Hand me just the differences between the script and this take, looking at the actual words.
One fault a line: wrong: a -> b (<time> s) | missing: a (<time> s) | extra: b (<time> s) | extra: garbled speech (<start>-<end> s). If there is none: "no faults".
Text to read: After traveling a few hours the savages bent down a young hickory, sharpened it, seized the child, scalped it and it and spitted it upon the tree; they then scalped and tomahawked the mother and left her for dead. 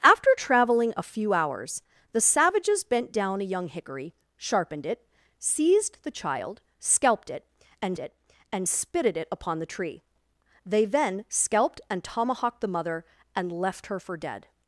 no faults